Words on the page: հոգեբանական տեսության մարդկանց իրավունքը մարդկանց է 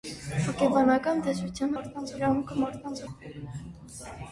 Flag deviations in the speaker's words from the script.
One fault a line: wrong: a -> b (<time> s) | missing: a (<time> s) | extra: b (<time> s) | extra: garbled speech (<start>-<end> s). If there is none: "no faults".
no faults